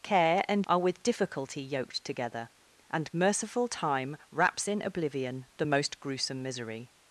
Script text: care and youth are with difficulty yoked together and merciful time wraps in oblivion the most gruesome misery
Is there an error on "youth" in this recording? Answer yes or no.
yes